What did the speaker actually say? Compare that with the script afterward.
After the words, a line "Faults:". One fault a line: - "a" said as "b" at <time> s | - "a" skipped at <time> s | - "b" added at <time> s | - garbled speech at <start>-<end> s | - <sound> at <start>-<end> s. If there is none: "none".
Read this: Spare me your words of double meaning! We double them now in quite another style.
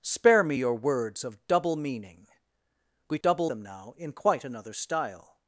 Spare me your words of double meaning! We double them now in quite another style.
Faults:
none